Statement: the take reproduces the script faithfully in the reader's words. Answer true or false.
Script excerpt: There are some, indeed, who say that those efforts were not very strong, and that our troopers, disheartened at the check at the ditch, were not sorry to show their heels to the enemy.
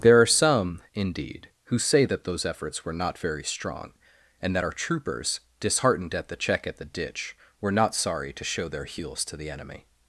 true